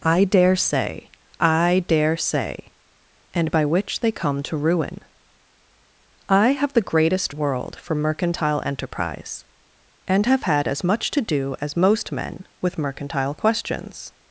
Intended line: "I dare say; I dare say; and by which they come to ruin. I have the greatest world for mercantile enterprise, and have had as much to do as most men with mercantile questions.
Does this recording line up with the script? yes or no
yes